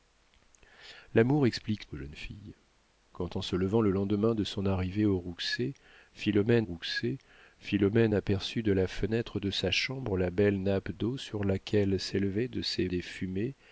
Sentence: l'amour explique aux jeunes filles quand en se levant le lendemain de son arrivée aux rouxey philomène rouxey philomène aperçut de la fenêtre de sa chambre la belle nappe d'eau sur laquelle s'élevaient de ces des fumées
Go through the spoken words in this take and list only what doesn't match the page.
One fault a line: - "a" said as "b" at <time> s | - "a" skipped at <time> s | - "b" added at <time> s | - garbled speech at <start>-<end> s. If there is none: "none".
none